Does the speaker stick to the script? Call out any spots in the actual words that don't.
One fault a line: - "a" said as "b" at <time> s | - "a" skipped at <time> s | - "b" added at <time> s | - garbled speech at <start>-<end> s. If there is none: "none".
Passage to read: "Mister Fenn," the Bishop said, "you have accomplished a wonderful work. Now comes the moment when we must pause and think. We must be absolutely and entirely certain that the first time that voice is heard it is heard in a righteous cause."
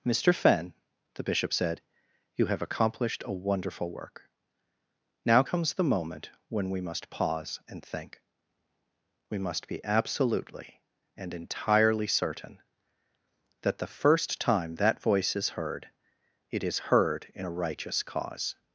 none